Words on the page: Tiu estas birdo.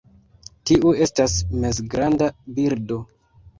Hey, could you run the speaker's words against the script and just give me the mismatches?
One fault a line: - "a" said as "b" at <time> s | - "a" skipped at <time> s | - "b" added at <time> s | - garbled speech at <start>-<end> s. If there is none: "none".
- "mezgranda" added at 1.7 s